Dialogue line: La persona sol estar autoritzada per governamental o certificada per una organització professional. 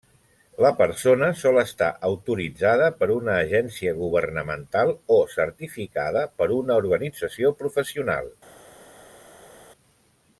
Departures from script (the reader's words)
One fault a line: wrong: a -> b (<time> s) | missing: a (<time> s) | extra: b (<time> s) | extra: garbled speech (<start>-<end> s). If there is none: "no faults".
extra: una agència (3.2 s)